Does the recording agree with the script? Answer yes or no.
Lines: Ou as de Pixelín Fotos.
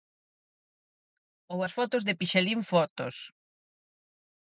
no